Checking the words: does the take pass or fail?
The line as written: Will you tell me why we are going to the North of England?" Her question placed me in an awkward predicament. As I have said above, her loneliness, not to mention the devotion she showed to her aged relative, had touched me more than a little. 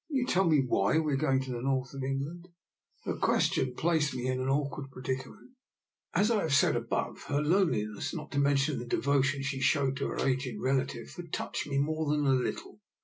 pass